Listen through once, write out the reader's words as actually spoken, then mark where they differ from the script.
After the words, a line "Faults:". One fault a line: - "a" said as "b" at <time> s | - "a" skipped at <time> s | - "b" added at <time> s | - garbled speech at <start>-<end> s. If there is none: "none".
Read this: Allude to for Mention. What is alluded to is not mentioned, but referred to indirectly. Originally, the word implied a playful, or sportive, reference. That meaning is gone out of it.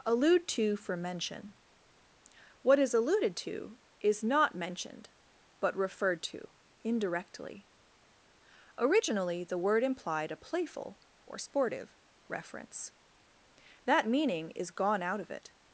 Allude to for Mention. What is alluded to is not mentioned, but referred to indirectly. Originally, the word implied a playful, or sportive, reference. That meaning is gone out of it.
Faults:
none